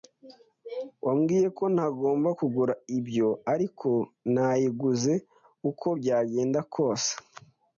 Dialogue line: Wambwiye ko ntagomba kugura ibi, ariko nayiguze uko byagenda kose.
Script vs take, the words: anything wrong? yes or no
yes